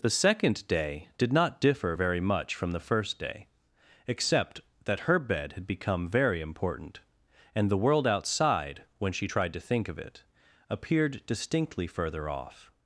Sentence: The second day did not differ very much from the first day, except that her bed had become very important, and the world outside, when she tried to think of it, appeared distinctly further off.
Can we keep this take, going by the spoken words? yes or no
yes